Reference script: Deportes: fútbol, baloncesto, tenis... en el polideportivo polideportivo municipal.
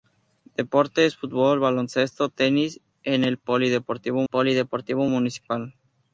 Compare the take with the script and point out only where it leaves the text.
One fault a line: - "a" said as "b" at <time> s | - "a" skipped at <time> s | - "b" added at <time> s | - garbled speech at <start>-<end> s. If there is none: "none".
none